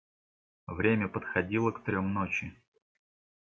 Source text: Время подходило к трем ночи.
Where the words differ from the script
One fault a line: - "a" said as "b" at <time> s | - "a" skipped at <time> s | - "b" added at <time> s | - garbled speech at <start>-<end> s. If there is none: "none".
none